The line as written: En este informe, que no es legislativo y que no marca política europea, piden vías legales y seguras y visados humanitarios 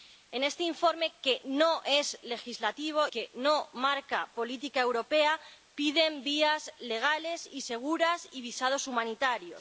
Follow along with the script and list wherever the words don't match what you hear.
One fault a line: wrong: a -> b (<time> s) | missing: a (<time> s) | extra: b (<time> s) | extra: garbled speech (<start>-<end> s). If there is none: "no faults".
missing: y (3.1 s)